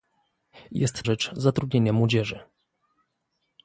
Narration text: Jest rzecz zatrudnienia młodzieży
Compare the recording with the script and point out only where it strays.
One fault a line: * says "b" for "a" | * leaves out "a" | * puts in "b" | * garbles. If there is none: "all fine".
all fine